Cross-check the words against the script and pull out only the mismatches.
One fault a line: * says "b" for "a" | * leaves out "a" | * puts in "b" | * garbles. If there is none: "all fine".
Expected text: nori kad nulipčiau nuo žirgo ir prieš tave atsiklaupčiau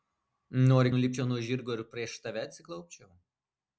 * leaves out "kad"